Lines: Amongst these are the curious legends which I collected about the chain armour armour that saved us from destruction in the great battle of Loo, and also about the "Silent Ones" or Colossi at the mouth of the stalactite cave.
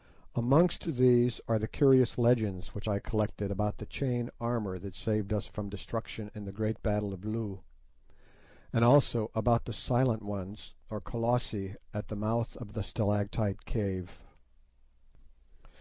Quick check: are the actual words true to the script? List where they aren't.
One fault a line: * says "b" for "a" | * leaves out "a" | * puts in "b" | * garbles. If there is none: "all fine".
* leaves out "armour"